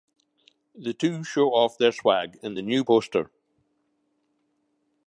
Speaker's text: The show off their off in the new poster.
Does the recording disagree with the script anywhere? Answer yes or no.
yes